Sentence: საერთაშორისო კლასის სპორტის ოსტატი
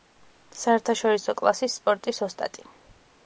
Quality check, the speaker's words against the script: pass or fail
pass